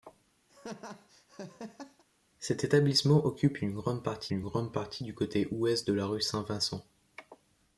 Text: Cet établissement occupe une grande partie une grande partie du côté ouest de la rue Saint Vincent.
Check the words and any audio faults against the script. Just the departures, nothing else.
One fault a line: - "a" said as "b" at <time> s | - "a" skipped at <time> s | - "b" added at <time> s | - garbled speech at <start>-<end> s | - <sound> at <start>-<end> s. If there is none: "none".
- laugh at 0.5-2.0 s